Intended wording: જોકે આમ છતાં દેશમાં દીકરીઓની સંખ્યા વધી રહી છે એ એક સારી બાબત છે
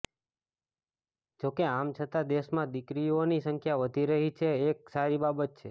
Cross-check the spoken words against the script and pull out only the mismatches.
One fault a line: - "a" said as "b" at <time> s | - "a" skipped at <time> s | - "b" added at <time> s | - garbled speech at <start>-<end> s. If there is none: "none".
none